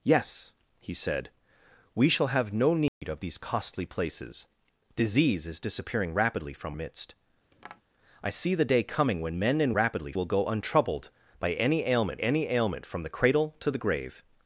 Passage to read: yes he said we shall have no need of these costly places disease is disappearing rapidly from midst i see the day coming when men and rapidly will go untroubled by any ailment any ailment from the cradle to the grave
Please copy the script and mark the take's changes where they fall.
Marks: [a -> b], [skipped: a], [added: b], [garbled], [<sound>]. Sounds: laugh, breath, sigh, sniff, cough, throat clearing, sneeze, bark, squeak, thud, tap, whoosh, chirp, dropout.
yes he said we shall have no need [dropout] of these costly places disease is disappearing rapidly from midst [tap] i see the day coming when men and rapidly will go untroubled by any ailment any ailment from the cradle to the grave